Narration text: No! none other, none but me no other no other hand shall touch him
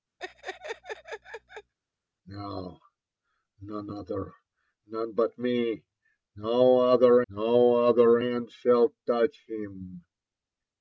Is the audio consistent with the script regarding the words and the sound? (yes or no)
no